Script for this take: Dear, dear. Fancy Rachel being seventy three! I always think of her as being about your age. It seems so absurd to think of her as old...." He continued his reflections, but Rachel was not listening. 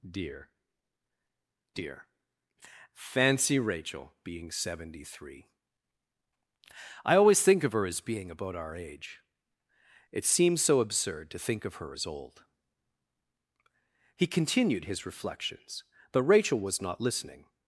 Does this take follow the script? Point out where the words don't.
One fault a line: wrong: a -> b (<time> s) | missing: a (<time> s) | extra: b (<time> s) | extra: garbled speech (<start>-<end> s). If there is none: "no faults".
wrong: your -> our (8.5 s)